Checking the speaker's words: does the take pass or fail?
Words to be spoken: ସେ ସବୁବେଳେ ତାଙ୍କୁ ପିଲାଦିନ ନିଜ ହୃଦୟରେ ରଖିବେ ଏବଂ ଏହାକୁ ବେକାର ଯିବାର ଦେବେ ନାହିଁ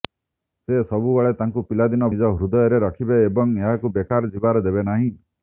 pass